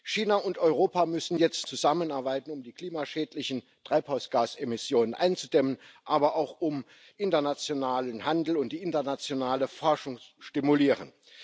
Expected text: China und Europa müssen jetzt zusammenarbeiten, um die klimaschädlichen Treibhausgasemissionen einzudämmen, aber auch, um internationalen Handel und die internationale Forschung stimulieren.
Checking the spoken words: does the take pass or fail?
pass